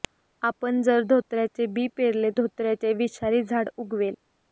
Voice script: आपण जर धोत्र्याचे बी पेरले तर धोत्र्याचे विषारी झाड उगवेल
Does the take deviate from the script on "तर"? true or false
true